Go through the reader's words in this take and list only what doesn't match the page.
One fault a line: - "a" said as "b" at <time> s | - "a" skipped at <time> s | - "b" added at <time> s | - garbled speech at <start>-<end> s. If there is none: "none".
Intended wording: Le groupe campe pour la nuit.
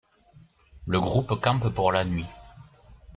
none